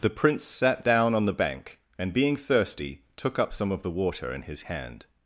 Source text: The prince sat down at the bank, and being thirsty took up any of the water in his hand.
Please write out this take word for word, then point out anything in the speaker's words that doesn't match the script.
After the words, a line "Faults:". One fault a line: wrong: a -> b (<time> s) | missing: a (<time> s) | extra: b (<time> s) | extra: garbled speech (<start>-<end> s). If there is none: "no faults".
The prince sat down on the bank, and being thirsty took up some of the water in his hand.
Faults:
wrong: at -> on (1.1 s)
wrong: any -> some (3.5 s)